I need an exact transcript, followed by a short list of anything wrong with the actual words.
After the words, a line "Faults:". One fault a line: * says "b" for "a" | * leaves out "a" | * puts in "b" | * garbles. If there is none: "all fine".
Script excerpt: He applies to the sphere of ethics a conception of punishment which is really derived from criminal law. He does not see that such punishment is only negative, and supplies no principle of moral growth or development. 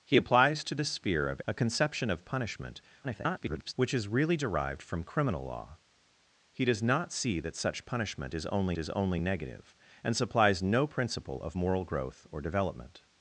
He applies to the sphere of a conception of punishment [garbled] which is really derived from criminal law. He does not see that such punishment is only is only negative, and supplies no principle of moral growth or development.
Faults:
* leaves out "ethics"
* garbles
* puts in "is only"